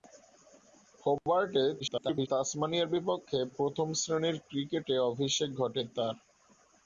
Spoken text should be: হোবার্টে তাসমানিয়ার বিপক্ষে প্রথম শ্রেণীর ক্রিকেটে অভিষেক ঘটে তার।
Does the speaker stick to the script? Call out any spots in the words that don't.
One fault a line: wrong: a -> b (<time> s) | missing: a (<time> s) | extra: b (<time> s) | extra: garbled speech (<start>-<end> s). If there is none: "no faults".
extra: garbled speech (1.8-2.3 s)